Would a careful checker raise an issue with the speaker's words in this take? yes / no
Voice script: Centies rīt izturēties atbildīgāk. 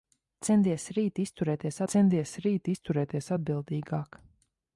yes